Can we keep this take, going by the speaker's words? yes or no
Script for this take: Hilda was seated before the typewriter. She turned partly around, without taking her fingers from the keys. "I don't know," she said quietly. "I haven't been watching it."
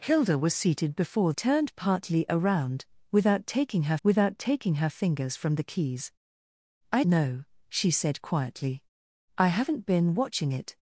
no